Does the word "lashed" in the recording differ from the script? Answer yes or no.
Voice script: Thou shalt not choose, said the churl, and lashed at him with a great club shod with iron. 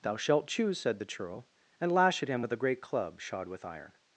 yes